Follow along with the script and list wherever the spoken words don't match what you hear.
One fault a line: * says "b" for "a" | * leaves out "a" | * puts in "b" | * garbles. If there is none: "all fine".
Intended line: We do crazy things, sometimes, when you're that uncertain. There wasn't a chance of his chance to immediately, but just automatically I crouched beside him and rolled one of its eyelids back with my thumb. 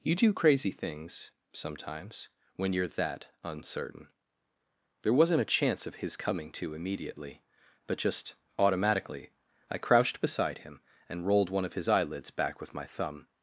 * says "You" for "We"
* says "coming" for "chance"
* says "his" for "its"